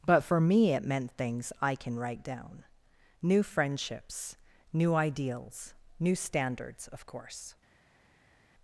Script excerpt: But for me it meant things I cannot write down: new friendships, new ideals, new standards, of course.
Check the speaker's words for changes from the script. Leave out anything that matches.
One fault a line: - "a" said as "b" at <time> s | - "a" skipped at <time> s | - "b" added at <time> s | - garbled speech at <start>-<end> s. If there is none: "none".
- "cannot" said as "can" at 1.8 s